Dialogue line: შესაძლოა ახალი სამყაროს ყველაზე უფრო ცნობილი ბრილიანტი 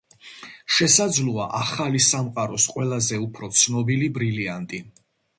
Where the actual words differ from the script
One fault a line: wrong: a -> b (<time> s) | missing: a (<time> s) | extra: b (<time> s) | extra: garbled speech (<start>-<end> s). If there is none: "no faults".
no faults